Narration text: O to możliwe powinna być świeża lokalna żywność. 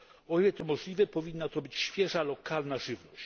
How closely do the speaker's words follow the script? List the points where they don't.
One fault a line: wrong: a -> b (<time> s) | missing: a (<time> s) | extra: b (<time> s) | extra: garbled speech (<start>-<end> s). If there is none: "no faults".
extra: ile (0.4 s)
extra: to (1.5 s)